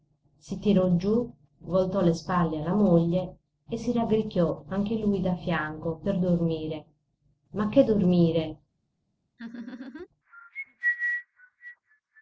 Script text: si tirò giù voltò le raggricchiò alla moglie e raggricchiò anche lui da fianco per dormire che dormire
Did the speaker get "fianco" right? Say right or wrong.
right